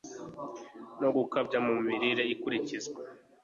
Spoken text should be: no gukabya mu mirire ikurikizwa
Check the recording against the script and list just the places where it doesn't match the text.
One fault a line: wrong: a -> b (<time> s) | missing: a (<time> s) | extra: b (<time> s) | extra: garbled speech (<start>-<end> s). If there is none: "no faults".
no faults